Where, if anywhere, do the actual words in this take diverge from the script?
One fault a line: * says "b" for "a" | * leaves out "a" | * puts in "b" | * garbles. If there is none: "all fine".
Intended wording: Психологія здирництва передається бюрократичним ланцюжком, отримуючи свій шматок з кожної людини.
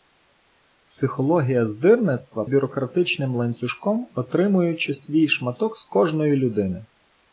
* leaves out "передається"